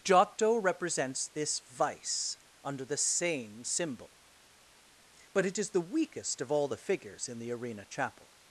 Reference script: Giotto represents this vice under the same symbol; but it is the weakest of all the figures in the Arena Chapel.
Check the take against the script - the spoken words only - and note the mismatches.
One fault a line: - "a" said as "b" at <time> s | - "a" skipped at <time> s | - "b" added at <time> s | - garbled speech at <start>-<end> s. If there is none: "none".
none